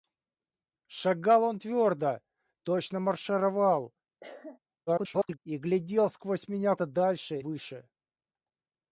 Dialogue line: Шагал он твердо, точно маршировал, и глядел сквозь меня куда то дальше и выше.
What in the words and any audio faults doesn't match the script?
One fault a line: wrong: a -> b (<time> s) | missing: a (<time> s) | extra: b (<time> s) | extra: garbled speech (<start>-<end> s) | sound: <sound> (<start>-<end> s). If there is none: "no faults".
sound: cough (4.2-4.6 s)
extra: garbled speech (4.9-5.4 s)
missing: куда (6.7 s)
missing: и (7.4 s)